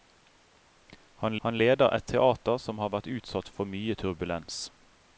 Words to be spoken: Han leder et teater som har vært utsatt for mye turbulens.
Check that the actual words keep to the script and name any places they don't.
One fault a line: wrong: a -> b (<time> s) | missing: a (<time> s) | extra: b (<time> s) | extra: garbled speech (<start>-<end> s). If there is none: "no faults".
extra: han (1.4 s)